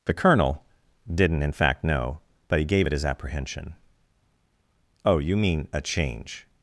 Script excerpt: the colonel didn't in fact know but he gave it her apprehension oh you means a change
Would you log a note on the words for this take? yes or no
yes